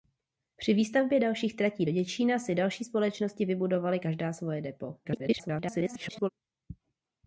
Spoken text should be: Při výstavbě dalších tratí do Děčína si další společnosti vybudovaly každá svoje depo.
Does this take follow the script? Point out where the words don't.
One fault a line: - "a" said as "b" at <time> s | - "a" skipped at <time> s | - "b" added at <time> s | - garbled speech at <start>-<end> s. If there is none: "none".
- garbled speech at 5.0-6.3 s